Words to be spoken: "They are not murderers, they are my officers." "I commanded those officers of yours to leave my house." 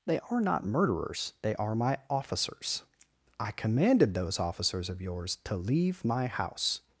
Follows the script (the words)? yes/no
yes